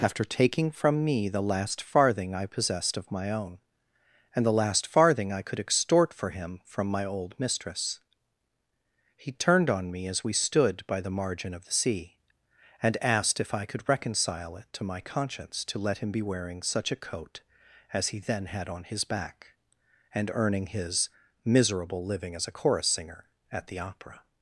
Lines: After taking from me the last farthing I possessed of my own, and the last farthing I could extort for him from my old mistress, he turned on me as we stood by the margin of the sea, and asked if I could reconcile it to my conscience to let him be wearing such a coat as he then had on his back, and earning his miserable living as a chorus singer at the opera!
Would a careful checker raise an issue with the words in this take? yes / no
no